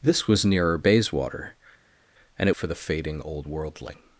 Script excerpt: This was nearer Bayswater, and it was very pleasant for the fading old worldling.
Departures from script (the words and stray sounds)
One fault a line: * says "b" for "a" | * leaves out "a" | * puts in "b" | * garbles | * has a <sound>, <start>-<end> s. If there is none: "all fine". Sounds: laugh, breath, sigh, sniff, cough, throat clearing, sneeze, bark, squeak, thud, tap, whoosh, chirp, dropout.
* leaves out "was very pleasant"